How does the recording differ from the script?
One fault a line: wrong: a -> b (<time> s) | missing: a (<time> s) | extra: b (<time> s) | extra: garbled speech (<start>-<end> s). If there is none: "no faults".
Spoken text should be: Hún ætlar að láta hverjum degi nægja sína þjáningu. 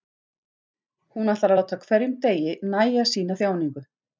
no faults